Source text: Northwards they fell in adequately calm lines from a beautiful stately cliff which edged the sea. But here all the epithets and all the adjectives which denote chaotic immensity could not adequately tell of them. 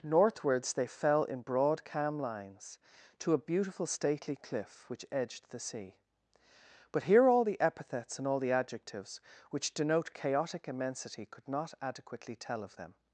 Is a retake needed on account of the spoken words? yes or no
yes